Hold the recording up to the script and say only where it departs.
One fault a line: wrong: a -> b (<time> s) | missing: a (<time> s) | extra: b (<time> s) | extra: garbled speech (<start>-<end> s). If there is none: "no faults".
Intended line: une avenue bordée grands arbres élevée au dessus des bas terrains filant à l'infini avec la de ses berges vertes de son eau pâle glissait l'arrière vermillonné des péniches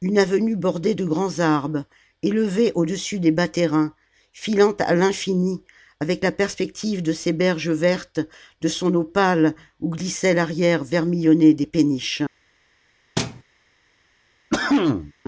extra: de (0.9 s)
extra: perspective (6.3 s)
extra: où (9.8 s)